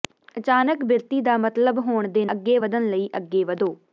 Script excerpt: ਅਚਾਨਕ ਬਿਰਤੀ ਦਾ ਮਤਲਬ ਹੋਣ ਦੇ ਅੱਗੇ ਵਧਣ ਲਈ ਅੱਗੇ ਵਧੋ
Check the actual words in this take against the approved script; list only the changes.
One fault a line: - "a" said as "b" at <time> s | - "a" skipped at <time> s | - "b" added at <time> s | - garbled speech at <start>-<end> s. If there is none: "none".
none